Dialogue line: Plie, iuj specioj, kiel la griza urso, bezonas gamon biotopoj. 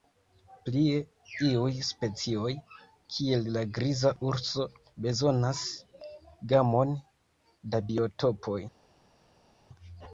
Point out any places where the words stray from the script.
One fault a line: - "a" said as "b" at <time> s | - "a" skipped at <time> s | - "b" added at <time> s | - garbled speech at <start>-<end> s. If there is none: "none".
- "da" added at 7.8 s